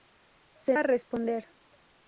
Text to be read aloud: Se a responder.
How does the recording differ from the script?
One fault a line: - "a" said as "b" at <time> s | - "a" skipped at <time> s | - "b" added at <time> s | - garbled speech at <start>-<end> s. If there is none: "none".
none